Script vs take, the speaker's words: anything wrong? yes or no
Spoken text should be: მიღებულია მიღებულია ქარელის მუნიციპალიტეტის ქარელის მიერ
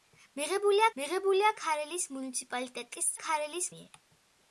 no